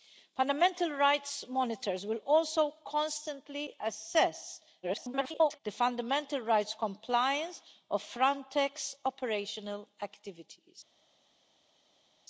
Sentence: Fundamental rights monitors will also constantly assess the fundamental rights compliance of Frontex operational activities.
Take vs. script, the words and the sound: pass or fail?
fail